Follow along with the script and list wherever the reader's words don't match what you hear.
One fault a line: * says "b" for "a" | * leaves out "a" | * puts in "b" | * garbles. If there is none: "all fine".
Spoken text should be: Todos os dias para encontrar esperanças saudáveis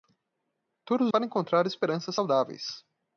* leaves out "os dias"